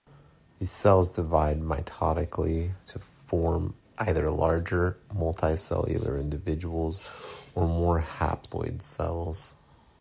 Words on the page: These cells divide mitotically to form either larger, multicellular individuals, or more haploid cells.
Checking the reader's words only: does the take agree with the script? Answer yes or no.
yes